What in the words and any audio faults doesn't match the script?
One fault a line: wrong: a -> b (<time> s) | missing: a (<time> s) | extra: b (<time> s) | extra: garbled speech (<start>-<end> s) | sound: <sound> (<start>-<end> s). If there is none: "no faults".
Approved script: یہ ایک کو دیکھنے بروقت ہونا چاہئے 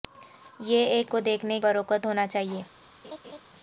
sound: laugh (3.0-3.4 s)